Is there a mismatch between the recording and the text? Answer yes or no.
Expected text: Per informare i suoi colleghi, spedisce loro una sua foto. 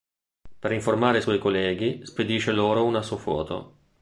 no